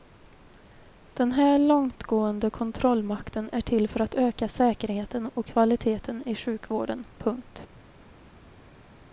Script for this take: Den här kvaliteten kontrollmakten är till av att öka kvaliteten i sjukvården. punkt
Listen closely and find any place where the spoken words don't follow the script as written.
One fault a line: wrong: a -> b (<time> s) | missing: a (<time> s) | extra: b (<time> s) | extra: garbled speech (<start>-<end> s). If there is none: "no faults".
wrong: kvaliteten -> långtgående (1.6 s)
wrong: av -> för (3.9 s)
extra: säkerheten och (4.5 s)